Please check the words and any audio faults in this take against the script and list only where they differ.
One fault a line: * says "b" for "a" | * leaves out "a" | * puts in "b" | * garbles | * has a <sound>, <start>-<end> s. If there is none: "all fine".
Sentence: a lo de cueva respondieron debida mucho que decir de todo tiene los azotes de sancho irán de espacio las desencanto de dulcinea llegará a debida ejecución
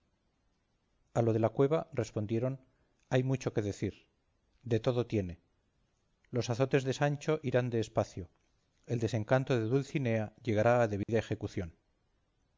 * puts in "la"
* says "hay" for "debida"
* says "el" for "las"
* has a dropout, 11.0-11.1 s